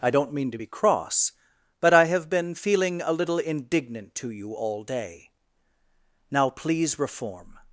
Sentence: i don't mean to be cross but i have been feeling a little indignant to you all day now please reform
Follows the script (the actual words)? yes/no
yes